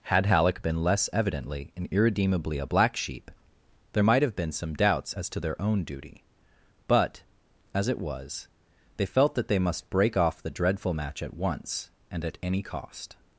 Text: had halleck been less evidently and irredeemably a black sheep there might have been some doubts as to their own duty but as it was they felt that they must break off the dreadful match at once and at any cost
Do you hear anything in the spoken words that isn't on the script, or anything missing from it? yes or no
no